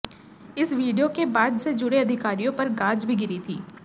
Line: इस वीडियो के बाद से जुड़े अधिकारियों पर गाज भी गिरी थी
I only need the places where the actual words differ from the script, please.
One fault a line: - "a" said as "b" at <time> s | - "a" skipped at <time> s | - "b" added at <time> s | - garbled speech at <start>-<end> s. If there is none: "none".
none